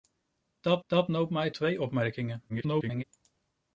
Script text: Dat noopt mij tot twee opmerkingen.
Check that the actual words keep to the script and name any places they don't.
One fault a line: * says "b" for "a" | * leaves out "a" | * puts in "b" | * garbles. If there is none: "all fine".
* puts in "dat"
* leaves out "tot"
* garbles